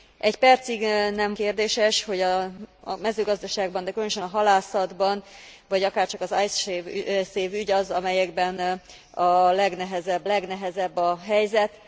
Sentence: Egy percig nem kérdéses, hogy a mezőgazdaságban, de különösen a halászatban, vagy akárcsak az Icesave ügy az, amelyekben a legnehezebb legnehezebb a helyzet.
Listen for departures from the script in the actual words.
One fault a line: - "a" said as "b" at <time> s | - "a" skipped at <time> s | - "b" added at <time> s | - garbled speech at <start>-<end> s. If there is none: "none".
none